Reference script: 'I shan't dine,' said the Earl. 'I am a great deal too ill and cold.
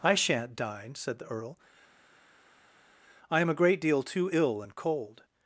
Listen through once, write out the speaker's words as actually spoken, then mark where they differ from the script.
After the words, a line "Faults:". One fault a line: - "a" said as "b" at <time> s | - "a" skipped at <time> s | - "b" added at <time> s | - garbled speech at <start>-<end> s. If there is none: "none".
'I shan't dine,' said the Earl. 'I am a great deal too ill and cold.
Faults:
none